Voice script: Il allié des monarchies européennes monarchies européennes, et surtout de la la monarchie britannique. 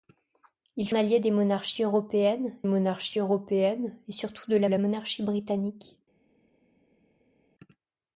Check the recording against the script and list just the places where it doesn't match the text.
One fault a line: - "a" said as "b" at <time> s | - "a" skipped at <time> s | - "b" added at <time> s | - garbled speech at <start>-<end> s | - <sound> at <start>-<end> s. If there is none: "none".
none